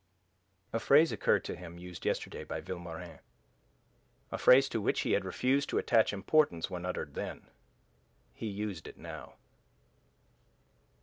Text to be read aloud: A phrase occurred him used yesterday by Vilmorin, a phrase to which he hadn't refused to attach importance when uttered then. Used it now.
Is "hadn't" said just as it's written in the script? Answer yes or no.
no